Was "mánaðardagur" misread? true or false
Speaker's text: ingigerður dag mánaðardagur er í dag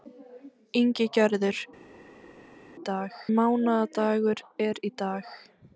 false